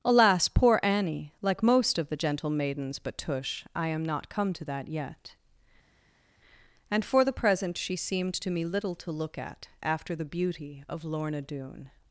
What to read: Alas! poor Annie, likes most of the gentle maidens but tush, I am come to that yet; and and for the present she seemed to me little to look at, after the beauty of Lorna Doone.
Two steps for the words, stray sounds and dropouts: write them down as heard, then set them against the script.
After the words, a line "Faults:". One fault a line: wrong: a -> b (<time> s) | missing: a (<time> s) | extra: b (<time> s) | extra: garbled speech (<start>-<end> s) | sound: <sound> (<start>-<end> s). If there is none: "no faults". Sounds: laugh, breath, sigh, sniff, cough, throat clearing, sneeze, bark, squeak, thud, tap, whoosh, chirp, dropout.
Alas! poor Annie, like most of the gentle maidens but tush, I am not come to that yet; and for the present she seemed to me little to look at, after the beauty of Lorna Doone.
Faults:
wrong: likes -> like (1.4 s)
extra: not (4.0 s)
missing: and (7.0 s)